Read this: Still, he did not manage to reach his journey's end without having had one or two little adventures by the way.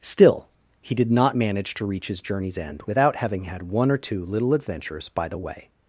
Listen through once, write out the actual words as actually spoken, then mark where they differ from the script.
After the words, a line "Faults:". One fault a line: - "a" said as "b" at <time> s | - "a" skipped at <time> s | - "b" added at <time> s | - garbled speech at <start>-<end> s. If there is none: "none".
Still, he did not manage to reach his journey's end without having had one or two little adventures by the way.
Faults:
none